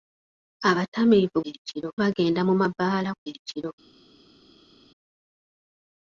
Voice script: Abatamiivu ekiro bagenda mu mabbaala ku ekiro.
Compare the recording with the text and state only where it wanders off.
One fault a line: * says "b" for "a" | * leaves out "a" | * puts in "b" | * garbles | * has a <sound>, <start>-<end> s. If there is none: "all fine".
all fine